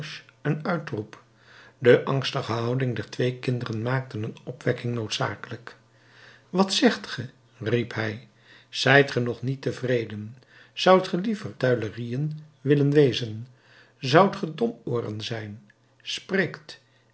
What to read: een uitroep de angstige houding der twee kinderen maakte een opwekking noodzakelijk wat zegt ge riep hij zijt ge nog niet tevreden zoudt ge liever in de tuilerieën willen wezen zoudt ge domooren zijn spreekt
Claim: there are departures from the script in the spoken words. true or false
true